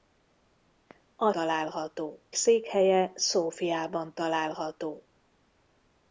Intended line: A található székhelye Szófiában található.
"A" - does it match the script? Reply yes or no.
yes